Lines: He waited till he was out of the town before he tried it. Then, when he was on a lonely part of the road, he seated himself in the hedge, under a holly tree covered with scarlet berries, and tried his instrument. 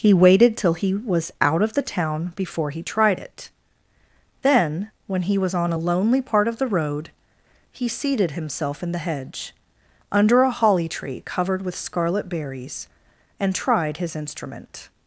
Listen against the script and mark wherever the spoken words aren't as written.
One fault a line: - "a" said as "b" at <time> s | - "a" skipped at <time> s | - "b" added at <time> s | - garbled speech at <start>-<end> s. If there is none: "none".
none